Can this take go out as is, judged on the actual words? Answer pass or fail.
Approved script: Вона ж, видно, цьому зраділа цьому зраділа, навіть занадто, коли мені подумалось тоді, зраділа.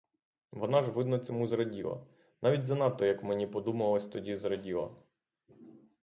fail